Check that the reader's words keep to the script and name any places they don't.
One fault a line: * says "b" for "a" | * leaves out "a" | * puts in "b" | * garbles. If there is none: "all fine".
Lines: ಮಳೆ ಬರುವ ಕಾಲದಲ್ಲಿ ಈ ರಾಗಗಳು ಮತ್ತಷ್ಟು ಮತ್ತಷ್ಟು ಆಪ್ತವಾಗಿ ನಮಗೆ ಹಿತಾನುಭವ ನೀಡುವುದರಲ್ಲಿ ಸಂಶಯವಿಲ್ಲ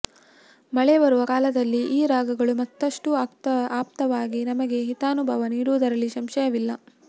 * leaves out "ಮತ್ತಷ್ಟು"